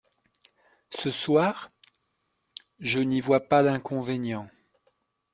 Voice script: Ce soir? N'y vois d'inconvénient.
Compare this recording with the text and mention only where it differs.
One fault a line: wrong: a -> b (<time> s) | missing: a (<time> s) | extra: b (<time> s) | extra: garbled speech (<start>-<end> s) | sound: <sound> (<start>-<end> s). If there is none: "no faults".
extra: Je (2.8 s)
extra: pas (3.5 s)